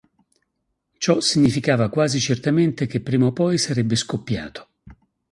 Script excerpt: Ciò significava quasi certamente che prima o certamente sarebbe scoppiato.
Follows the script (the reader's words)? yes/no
no